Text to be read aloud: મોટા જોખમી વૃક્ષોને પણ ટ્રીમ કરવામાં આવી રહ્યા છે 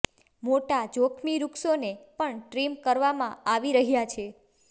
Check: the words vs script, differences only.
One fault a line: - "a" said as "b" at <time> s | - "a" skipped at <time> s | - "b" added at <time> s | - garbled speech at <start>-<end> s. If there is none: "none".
none